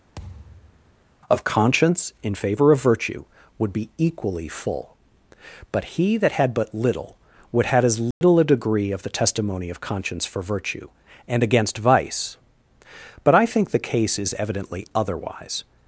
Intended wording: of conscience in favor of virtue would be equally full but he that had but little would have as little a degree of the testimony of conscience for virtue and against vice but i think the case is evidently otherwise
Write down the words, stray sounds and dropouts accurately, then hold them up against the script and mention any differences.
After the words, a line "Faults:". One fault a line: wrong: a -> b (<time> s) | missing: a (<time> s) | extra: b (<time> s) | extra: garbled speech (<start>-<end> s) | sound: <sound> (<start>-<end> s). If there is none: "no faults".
of conscience in favor of virtue would be equally full but he that had but little would have as little a degree of the testimony of conscience for virtue and against vice but i think the case is evidently otherwise
Faults:
sound: thud (0.2-0.9 s)
sound: dropout (8.1-8.2 s)